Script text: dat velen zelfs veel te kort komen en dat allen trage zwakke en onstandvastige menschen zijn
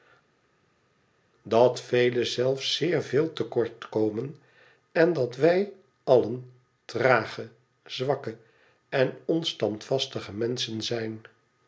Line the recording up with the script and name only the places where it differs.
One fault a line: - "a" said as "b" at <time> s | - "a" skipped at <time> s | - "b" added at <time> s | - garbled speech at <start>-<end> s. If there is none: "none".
- "zeer" added at 2.8 s
- "wij" added at 5.4 s